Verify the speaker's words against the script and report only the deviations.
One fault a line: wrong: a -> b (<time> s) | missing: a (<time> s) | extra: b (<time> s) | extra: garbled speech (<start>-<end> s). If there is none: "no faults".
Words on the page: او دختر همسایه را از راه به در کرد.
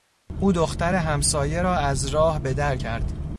no faults